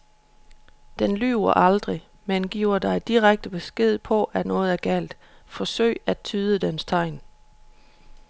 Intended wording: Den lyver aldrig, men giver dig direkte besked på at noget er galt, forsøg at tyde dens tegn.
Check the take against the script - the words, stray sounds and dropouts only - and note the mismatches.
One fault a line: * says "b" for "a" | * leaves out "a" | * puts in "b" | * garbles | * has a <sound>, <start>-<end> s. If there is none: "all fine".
all fine